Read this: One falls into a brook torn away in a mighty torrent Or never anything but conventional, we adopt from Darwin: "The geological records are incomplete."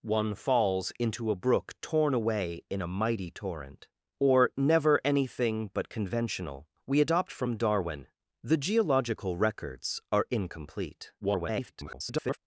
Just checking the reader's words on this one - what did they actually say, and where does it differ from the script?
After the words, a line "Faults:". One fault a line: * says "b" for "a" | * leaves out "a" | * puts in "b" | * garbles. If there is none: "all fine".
One falls into a brook torn away in a mighty torrent Or never anything but conventional, we adopt from Darwin: "The geological records are incomplete." [garbled]
Faults:
* garbles